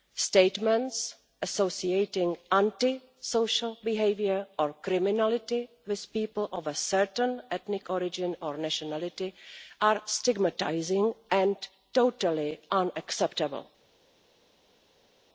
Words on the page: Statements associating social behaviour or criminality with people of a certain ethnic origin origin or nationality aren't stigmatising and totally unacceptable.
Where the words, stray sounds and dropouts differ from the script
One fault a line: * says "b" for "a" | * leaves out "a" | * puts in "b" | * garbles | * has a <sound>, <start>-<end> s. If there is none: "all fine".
* puts in "anti"
* leaves out "origin"
* says "are" for "aren't"